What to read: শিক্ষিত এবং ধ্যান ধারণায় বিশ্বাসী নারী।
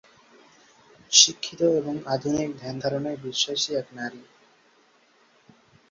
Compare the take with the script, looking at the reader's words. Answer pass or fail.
fail